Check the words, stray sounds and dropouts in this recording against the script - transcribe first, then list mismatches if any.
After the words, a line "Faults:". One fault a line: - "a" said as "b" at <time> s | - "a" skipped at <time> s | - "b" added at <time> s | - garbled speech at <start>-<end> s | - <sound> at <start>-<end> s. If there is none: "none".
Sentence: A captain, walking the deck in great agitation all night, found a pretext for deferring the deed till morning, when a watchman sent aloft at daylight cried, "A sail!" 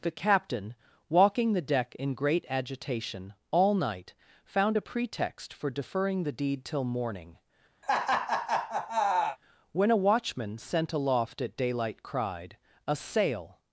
The captain, walking the deck in great agitation all night, found a pretext for deferring the deed till morning, when a watchman sent aloft at daylight cried, "A sail!"
Faults:
- "A" said as "The" at 0.0 s
- laugh at 7.8-9.4 s